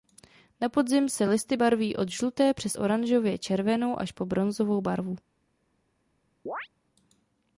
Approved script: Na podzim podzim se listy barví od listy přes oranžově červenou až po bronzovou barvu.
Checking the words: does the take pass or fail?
fail